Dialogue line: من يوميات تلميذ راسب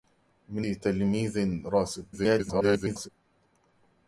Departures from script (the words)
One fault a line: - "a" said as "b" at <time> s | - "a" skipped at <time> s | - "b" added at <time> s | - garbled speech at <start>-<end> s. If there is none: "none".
- "يوميات" skipped at 0.7 s
- garbled speech at 2.1-3.1 s